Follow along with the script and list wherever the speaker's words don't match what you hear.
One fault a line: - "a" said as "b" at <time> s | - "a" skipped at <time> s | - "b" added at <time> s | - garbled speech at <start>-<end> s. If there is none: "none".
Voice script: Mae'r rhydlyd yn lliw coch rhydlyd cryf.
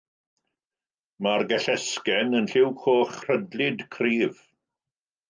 - "rhydlyd" said as "gellesgen" at 1.5 s